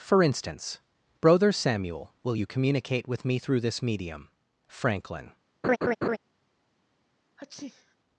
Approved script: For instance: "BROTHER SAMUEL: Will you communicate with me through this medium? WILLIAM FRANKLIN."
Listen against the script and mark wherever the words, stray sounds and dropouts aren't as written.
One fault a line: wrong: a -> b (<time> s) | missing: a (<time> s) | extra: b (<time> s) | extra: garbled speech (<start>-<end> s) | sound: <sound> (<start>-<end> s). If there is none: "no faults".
missing: WILLIAM (4.3 s)
sound: laugh (5.6-6.2 s)
sound: sneeze (7.4-8.0 s)